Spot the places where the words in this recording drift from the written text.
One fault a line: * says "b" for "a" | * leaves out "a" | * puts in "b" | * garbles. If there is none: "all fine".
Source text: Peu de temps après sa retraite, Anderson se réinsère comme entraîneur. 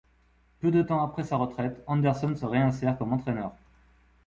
all fine